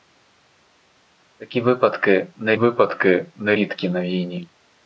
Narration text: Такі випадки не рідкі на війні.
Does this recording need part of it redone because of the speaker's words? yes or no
yes